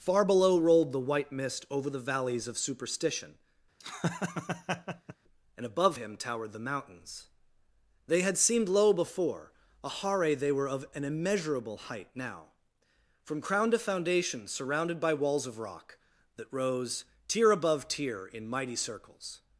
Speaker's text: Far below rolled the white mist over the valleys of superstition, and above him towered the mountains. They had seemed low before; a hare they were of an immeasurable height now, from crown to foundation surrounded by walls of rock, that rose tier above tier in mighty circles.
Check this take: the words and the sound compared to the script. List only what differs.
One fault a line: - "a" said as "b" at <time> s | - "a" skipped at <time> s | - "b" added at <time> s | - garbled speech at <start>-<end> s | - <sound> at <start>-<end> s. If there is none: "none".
- laugh at 3.8-5.2 s